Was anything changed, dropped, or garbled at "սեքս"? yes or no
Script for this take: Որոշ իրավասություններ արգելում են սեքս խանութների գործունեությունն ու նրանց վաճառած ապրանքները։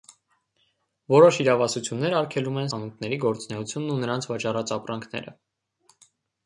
yes